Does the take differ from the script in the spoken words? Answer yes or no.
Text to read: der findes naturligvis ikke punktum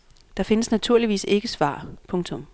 yes